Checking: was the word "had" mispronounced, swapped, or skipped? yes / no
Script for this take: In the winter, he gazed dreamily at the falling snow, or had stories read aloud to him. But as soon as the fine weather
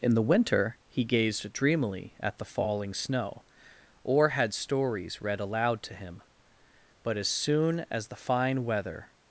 no